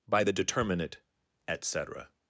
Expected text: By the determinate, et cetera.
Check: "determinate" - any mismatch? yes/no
no